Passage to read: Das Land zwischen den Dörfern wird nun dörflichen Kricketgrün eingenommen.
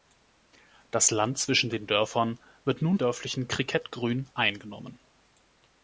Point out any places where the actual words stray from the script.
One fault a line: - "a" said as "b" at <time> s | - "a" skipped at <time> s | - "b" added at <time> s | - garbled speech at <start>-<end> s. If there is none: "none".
none